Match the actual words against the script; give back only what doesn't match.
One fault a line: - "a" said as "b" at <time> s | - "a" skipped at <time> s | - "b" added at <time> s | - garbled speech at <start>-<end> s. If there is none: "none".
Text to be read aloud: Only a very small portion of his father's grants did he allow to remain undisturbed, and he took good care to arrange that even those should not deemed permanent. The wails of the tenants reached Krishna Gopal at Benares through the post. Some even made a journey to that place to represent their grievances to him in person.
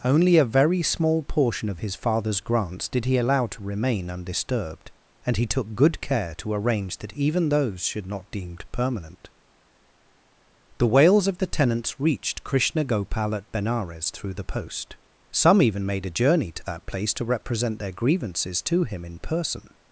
none